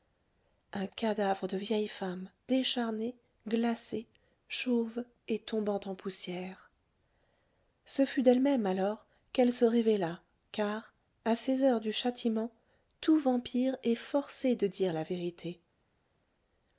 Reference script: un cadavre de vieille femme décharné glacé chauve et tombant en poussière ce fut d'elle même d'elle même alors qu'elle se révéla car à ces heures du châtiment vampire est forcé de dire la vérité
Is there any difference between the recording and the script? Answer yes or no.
yes